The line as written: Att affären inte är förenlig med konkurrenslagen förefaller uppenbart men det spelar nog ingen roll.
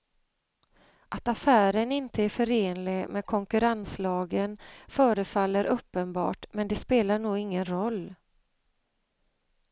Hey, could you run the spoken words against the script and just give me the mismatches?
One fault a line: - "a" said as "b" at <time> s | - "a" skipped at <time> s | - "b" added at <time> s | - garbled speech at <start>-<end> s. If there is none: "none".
none